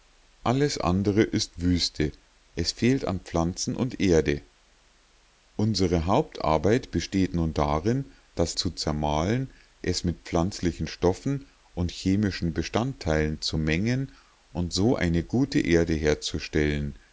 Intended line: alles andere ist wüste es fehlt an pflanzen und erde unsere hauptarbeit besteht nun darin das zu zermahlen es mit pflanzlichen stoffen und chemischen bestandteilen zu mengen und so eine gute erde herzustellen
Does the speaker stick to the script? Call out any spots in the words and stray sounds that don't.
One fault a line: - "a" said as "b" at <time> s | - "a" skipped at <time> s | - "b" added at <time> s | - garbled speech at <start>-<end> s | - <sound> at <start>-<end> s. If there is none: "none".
none